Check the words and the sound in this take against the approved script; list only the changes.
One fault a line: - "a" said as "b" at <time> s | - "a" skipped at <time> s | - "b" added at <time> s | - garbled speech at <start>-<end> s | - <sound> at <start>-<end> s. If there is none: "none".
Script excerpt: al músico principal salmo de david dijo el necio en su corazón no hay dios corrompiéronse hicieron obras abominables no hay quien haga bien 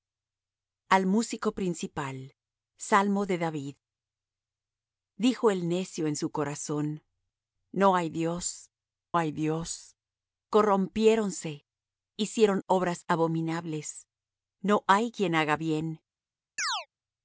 - "hay dios" added at 9.2 s
- chirp at 16.6-16.9 s